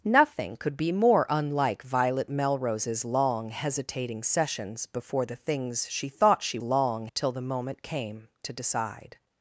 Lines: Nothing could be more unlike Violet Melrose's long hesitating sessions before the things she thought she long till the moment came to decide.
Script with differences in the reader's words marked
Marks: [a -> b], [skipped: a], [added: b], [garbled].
Nothing could be more unlike Violet Melrose's long hesitating sessions before the things she thought she long till the moment came to decide.